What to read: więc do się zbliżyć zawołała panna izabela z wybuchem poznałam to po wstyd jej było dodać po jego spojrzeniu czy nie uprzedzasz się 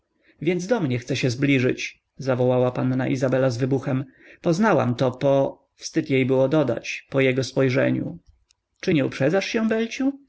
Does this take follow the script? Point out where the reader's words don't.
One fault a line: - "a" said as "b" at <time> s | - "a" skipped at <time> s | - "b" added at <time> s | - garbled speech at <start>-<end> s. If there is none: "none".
- "mnie chce" added at 0.8 s